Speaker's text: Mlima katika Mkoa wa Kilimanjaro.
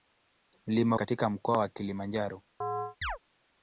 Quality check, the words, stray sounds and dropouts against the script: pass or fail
fail